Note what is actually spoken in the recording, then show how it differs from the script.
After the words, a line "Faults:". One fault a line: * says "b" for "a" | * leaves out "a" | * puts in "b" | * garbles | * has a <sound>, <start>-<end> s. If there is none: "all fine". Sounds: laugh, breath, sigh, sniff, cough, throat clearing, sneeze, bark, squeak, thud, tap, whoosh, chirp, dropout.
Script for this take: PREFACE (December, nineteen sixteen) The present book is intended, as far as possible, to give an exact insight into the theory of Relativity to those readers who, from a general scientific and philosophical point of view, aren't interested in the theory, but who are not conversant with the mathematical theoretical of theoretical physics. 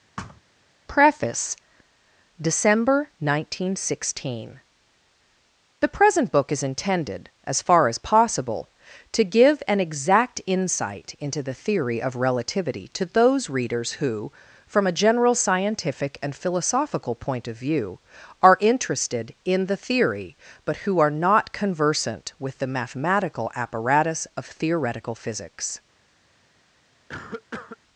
PREFACE (December, nineteen sixteen) The present book is intended, as far as possible, to give an exact insight into the theory of Relativity to those readers who, from a general scientific and philosophical point of view, are interested in the theory, but who are not conversant with the mathematical apparatus of theoretical physics.
Faults:
* has a thud, 0.2-0.4 s
* says "are" for "aren't"
* says "apparatus" for "theoretical"
* has a cough, 27.1-27.8 s